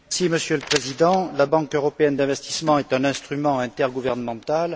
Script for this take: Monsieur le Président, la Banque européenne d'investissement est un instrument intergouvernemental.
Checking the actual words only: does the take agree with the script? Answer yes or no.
yes